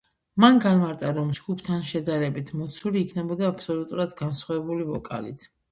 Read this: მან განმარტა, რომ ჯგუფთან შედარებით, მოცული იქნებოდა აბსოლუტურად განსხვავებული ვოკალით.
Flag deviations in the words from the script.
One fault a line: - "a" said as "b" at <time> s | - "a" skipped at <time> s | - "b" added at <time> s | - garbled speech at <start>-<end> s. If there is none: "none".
none